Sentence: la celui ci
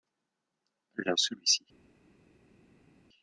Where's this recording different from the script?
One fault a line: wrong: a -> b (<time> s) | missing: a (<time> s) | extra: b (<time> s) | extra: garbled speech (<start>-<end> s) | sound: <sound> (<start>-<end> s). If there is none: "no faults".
no faults